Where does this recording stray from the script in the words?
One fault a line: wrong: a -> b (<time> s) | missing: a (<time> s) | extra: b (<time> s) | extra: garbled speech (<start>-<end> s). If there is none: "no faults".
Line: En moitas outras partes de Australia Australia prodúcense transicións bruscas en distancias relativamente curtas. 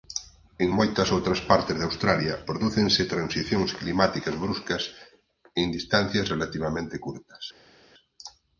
missing: Australia (2.3 s)
extra: climáticas (3.8 s)